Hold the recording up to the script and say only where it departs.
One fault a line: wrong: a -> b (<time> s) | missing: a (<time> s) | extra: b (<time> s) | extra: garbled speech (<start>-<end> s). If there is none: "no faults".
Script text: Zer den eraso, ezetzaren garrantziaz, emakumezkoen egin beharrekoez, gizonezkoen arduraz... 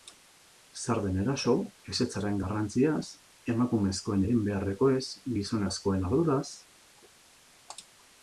no faults